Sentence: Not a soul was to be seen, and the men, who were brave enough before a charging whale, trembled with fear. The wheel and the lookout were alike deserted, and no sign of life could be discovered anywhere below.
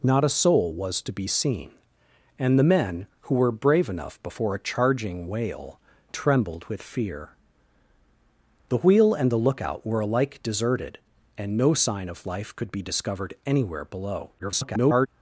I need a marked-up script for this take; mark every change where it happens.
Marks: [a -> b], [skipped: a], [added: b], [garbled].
Not a soul was to be seen, and the men, who were brave enough before a charging whale, trembled with fear. The wheel and the lookout were alike deserted, and no sign of life could be discovered anywhere below. [garbled]